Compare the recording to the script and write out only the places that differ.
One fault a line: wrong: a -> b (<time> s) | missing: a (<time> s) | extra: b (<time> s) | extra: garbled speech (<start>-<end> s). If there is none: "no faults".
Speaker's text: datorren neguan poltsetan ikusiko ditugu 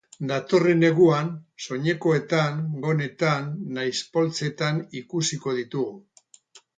extra: soinekoetan gonetan nahiz (1.6 s)